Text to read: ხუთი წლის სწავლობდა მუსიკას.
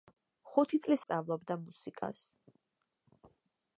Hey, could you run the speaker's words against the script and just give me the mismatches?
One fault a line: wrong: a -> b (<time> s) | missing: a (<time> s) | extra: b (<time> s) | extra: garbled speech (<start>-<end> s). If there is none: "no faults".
no faults